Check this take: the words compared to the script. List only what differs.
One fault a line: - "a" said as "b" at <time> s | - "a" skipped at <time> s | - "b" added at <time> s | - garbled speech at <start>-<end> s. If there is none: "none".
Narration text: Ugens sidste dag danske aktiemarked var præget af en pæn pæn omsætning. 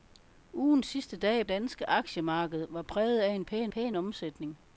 none